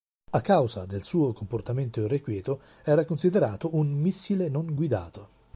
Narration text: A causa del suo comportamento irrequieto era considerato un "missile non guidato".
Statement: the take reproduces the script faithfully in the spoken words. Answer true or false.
true